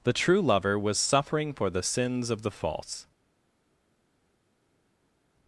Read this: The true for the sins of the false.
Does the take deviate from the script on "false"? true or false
false